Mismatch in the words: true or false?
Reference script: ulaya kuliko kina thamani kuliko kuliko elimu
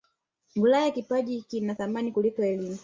true